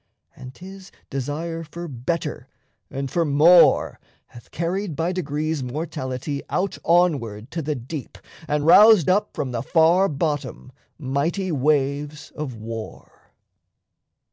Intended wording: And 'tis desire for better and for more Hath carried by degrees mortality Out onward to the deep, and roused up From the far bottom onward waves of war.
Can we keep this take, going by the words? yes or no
no